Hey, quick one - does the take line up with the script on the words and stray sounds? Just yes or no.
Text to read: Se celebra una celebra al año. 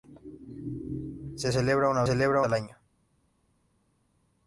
yes